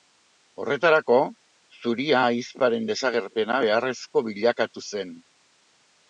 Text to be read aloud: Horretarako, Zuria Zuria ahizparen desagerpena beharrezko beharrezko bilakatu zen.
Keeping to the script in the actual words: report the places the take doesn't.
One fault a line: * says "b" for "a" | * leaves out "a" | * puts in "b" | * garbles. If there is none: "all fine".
* leaves out "Zuria"
* leaves out "beharrezko"